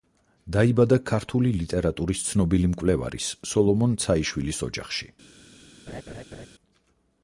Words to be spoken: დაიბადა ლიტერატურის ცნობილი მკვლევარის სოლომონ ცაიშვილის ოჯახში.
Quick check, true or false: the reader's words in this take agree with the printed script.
false